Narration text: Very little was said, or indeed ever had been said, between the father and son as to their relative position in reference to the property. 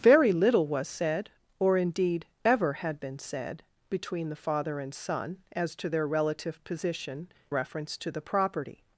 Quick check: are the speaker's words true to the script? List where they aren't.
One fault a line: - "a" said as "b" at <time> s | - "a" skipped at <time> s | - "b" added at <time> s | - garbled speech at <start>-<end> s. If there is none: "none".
- "in" skipped at 7.3 s